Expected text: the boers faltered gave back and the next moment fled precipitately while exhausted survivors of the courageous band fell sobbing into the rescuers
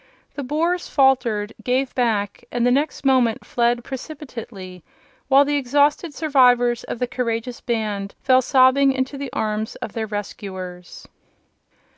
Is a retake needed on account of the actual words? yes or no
yes